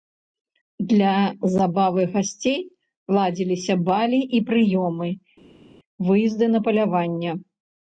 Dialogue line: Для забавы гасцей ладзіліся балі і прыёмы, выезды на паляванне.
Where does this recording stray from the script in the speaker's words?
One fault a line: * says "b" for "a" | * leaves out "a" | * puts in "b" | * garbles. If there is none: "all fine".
all fine